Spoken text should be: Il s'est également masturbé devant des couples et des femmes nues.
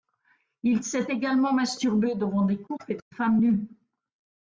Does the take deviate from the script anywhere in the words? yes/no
no